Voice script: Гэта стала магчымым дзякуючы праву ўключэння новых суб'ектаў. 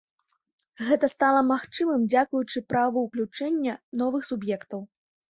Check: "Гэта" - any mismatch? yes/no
no